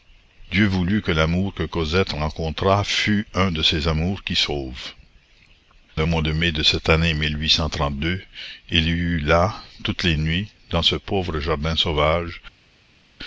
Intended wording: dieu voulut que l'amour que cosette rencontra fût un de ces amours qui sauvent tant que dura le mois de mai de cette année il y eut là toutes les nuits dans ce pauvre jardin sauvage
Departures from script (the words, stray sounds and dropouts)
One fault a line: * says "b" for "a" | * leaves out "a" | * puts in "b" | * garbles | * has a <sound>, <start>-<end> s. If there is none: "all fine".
* leaves out "tant que dura"